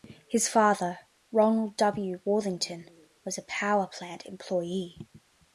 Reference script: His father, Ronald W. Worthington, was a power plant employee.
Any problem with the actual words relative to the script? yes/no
no